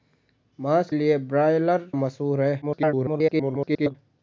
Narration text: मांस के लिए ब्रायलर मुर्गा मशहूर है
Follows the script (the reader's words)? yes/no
no